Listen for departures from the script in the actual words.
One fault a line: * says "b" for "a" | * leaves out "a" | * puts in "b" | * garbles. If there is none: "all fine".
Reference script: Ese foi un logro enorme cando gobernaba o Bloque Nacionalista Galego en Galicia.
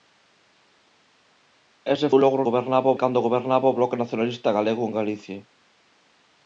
* leaves out "foi"
* says "gobernaba" for "enorme"